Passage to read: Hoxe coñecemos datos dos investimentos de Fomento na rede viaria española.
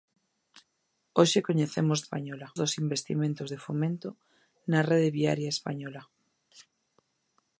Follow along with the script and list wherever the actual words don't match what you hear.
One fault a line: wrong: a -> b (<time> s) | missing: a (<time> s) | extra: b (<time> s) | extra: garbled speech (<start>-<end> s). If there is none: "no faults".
wrong: datos -> española (2.0 s)